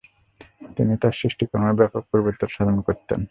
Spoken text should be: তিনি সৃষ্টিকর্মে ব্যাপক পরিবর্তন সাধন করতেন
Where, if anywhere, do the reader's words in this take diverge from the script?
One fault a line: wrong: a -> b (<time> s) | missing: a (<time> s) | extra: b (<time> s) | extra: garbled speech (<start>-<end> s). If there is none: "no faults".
extra: তার (1.0 s)